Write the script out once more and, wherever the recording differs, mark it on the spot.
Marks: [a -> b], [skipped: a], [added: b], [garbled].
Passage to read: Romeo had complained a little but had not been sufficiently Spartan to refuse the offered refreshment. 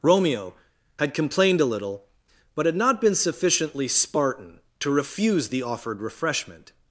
Romeo had complained a little but had not been sufficiently Spartan to refuse the offered refreshment.